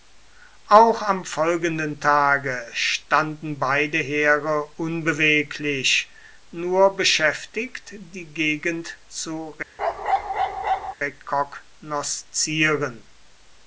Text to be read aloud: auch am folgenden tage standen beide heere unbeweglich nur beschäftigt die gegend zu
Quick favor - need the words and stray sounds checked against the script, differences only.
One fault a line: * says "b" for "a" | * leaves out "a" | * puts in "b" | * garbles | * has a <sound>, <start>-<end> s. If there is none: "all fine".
* has a bark, 9.8-10.9 s